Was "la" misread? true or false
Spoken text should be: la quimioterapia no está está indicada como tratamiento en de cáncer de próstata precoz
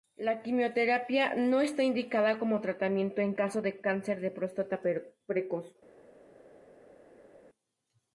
false